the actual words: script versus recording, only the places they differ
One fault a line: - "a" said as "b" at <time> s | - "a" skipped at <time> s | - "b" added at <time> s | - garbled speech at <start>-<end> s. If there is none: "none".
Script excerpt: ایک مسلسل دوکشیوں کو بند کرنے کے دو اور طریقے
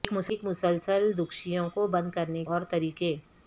- "کے دو" skipped at 2.4 s